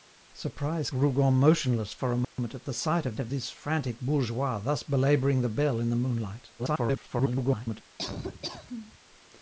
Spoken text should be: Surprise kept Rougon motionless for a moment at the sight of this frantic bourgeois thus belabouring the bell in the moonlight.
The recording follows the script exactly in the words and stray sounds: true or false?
false